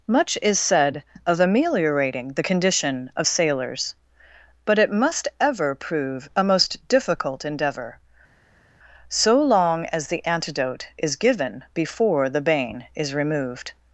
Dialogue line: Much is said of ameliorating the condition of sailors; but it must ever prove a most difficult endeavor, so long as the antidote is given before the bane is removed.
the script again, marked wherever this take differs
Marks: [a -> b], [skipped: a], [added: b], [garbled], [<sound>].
Much is said of ameliorating the condition of sailors; but it must ever prove a most difficult endeavor, so long as the antidote is given before the bane is removed.